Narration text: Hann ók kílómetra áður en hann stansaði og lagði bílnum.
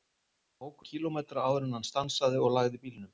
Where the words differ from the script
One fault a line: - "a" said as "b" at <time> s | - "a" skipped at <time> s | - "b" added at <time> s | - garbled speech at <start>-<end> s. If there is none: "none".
none